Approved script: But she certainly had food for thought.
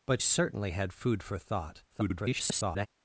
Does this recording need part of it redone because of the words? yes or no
yes